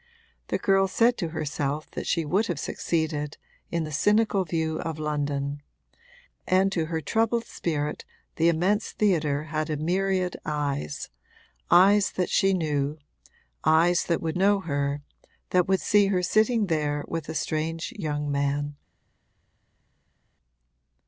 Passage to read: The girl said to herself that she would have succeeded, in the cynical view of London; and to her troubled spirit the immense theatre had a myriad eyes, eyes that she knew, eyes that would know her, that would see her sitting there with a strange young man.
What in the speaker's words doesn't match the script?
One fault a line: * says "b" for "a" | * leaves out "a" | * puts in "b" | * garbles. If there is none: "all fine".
all fine